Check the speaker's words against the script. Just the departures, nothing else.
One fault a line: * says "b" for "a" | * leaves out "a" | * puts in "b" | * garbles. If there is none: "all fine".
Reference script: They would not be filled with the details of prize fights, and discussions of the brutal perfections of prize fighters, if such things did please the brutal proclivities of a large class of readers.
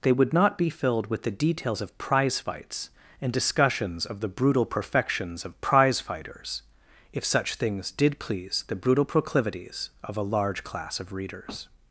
all fine